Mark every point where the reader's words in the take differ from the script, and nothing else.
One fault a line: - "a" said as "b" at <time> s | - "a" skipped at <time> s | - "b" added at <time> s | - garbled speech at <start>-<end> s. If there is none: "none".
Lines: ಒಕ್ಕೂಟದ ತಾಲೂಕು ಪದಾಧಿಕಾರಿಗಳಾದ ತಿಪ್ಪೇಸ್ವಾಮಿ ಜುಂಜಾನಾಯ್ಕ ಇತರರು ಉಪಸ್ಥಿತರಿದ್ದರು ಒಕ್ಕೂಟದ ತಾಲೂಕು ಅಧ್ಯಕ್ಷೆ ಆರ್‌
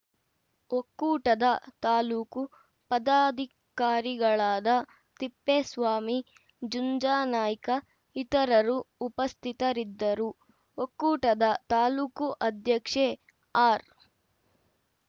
none